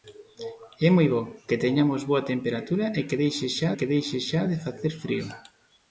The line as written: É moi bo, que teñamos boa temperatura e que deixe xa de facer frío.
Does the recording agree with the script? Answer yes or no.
no